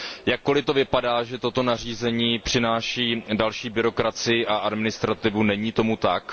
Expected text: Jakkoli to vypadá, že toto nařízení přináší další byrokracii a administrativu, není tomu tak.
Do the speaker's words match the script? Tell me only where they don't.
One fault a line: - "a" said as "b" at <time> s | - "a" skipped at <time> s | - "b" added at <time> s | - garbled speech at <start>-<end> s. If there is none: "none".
none